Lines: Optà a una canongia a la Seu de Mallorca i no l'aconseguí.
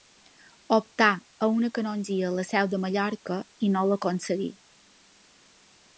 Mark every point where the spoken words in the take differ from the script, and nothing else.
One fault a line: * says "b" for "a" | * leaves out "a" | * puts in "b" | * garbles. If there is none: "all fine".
all fine